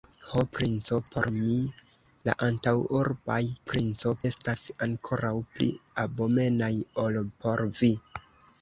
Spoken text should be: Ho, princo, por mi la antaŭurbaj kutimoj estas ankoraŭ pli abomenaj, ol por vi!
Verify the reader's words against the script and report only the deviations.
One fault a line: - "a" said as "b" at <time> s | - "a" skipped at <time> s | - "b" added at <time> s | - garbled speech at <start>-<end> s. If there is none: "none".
- "kutimoj" said as "princo" at 3.7 s